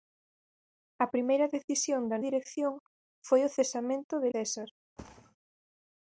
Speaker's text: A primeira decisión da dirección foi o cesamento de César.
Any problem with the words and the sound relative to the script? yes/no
yes